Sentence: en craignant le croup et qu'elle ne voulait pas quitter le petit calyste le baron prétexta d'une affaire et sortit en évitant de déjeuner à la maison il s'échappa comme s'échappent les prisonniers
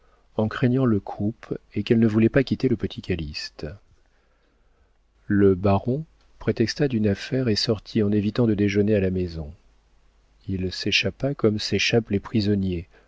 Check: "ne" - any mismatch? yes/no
no